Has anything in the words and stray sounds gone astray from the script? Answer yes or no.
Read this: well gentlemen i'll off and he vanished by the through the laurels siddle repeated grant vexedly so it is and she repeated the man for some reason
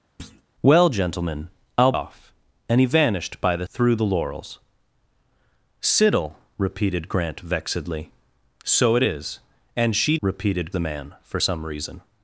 yes